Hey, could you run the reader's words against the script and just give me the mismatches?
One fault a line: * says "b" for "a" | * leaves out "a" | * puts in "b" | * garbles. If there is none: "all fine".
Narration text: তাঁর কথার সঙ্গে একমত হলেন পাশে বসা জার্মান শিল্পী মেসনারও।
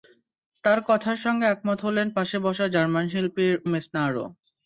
all fine